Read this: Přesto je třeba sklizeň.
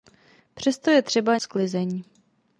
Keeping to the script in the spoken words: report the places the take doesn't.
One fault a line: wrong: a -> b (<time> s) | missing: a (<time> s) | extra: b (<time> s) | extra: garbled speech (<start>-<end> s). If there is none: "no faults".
no faults